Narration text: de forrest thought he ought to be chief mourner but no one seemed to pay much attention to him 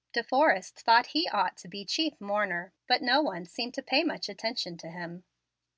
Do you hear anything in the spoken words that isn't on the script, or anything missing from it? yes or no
no